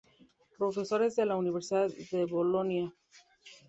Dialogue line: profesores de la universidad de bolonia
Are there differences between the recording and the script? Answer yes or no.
no